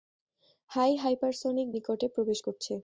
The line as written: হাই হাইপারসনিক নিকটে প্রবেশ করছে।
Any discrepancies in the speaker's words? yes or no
no